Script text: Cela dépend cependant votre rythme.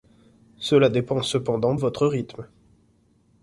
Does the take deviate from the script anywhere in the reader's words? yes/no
no